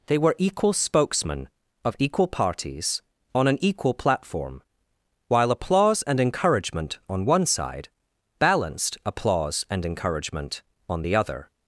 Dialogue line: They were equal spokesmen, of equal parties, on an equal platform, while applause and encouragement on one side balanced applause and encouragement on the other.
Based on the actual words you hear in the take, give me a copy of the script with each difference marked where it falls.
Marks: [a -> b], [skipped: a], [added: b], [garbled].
They were equal spokesmen, of equal parties, on an equal platform, while applause and encouragement on one side balanced applause and encouragement on the other.